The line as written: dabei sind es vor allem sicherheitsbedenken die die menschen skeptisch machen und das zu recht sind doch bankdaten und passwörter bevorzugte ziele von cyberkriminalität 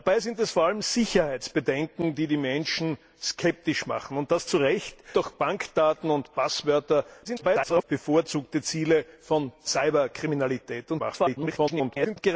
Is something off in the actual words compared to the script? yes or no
yes